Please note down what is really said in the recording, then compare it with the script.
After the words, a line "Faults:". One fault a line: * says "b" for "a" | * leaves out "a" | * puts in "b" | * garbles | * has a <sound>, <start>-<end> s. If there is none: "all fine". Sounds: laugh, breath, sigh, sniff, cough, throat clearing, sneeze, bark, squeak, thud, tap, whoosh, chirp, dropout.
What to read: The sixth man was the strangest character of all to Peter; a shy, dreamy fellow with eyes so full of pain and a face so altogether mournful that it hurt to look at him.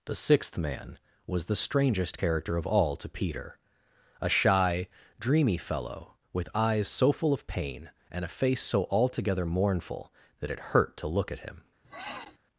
The sixth man was the strangest character of all to Peter; a shy, dreamy fellow with eyes so full of pain and a face so altogether mournful that it hurt to look at him.
Faults:
* has a sniff, 11.8-12.4 s